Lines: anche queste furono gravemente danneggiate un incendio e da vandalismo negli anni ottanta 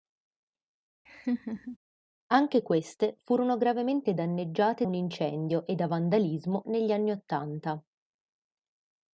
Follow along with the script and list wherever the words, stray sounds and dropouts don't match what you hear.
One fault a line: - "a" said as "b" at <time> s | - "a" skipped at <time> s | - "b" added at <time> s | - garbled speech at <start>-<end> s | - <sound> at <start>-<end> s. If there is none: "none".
- laugh at 1.1-1.8 s